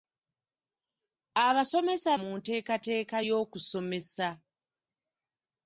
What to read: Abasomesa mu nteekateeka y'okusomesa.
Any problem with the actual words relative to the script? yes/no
no